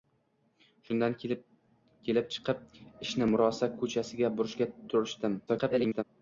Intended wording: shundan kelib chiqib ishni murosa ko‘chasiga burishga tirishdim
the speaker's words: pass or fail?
fail